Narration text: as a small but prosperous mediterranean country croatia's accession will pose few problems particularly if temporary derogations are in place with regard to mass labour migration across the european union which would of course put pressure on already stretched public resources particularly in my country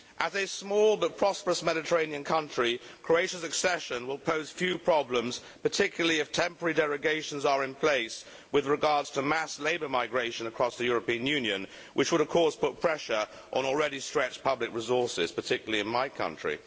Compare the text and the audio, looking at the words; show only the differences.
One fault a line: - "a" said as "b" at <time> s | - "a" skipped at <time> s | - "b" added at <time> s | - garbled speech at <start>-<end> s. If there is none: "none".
none